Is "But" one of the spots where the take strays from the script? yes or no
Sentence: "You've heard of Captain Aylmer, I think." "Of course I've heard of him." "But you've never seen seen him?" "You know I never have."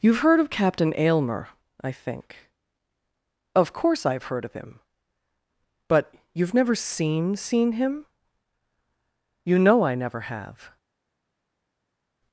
no